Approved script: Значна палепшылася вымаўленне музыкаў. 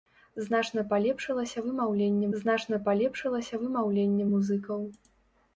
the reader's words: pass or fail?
fail